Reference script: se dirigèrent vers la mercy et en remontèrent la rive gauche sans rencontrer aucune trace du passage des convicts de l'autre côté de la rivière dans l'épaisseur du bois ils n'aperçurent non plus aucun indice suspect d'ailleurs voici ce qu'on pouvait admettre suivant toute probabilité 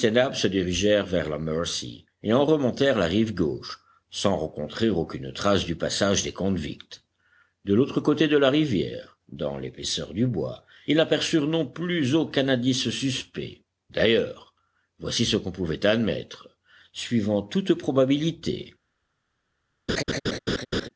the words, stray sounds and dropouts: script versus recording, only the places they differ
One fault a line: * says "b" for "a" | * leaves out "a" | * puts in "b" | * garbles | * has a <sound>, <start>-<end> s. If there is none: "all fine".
* has a laugh, 19.9-20.9 s